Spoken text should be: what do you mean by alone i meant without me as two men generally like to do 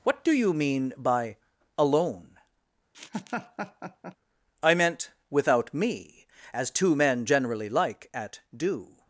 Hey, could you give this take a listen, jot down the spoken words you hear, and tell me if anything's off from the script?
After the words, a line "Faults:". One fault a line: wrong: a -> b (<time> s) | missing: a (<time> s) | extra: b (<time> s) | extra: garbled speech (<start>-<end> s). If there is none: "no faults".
what do you mean by alone i meant without me as two men generally like at do
Faults:
wrong: to -> at (8.1 s)